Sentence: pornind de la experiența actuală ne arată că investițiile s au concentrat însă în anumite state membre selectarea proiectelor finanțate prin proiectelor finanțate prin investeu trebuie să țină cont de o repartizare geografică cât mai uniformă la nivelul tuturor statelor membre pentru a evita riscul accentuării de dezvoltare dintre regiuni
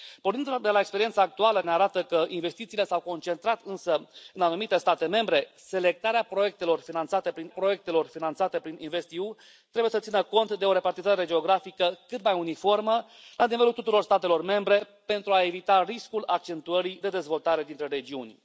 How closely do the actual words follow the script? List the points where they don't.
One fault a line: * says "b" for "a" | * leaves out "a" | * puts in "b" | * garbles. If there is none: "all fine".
all fine